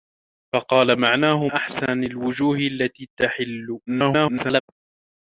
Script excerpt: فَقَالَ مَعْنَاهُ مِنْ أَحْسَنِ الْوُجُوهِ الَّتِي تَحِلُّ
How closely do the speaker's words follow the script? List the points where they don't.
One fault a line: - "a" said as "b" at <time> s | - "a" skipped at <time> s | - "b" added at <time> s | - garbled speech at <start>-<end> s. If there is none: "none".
- "مِنْ" skipped at 1.5 s
- garbled speech at 3.9-4.6 s